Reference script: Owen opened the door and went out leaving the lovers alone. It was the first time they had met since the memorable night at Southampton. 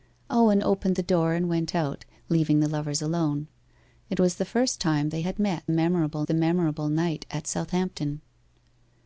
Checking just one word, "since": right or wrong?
wrong